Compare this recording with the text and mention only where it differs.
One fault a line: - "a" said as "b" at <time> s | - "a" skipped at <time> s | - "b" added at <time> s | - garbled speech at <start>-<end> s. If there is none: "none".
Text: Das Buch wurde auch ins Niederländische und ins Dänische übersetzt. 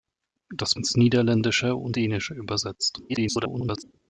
- "Buch wurde auch" skipped at 0.7 s
- "ins" skipped at 2.0 s
- garbled speech at 3.1-3.8 s